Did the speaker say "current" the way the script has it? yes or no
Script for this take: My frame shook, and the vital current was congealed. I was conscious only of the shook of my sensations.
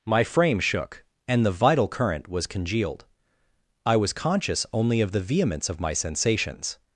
yes